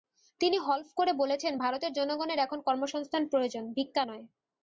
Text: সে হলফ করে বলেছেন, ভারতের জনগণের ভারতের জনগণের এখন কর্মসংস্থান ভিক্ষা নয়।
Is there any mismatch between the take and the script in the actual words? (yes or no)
yes